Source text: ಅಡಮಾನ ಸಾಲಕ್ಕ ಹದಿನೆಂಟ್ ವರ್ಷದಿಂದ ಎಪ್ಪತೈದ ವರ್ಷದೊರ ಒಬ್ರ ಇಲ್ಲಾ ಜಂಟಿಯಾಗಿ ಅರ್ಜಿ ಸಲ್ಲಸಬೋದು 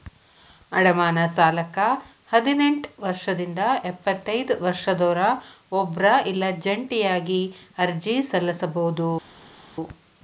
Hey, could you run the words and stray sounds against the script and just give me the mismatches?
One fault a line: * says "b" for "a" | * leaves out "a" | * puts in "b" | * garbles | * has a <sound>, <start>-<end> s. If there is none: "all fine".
all fine